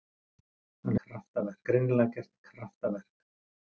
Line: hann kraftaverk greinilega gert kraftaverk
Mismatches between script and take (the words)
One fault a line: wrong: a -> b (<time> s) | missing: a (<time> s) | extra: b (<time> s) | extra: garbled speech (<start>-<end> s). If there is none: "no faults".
no faults